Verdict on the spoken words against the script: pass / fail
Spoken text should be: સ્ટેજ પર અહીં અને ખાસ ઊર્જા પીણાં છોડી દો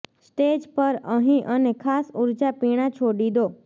pass